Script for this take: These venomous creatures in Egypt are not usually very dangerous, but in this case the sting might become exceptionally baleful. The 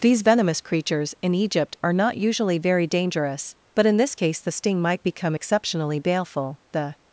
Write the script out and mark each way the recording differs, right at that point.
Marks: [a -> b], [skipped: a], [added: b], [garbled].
These venomous creatures in Egypt are not usually very dangerous, but in this case the sting might become exceptionally baleful. The